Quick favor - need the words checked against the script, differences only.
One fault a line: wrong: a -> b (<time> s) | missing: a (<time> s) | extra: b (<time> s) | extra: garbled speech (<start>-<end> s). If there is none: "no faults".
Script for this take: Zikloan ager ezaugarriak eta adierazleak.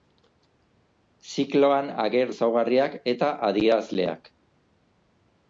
no faults